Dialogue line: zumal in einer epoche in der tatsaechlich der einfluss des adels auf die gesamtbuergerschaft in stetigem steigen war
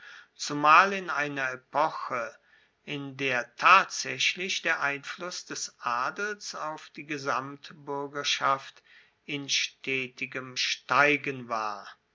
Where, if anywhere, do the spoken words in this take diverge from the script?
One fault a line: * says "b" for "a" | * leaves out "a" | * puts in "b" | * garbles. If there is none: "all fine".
all fine